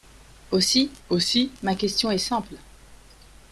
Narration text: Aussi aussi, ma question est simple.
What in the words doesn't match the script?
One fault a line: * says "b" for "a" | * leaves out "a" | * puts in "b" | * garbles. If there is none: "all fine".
all fine